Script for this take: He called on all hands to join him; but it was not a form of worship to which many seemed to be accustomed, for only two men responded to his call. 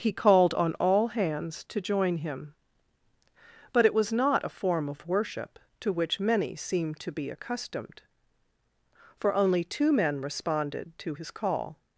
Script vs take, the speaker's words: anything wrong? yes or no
no